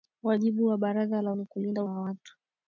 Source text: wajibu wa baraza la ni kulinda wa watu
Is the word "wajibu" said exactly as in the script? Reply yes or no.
yes